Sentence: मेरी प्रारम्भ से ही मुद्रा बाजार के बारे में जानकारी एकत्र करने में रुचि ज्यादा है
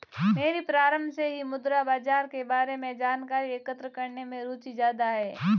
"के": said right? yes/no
yes